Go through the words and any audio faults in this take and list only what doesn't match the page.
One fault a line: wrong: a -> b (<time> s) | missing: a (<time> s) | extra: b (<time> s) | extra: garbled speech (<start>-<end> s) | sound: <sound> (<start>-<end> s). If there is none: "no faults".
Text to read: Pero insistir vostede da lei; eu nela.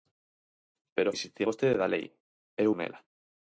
no faults